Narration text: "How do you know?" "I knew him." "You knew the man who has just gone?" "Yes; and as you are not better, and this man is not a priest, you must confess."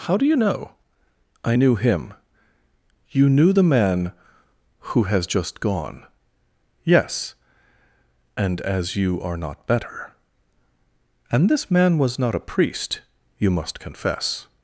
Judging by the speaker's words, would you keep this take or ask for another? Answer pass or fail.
fail